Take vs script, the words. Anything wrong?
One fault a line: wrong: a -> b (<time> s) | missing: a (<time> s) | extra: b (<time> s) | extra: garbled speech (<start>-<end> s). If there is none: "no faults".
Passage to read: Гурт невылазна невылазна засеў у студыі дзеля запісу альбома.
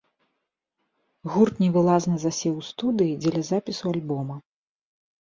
missing: невылазна (2.1 s)